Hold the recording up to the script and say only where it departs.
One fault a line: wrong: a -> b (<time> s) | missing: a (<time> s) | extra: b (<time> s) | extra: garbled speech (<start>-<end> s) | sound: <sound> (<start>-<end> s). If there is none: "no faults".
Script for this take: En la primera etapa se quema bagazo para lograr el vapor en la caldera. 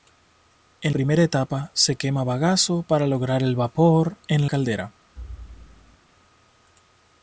missing: la (0.9 s)
missing: la (4.5 s)
sound: thud (5.2-6.0 s)